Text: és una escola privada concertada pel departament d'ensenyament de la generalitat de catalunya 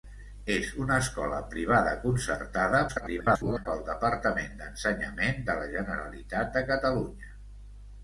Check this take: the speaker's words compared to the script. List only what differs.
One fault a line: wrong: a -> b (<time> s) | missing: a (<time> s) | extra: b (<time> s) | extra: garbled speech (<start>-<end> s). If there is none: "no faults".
extra: garbled speech (2.9-3.7 s)